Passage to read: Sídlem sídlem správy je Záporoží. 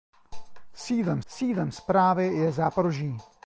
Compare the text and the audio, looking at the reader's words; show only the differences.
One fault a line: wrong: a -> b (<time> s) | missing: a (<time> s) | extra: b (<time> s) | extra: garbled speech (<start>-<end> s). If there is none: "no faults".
no faults